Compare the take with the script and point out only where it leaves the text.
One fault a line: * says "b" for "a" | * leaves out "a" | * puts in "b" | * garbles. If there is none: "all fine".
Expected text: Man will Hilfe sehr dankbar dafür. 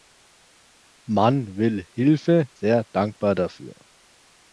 all fine